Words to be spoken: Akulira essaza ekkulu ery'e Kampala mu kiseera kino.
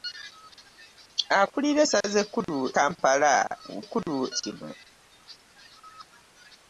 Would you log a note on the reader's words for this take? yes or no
yes